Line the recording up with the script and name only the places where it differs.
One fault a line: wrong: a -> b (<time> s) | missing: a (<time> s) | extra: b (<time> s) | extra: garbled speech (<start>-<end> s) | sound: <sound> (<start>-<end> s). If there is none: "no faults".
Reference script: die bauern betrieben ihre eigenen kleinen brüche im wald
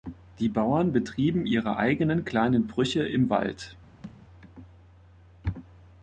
sound: thud (4.0-4.2 s)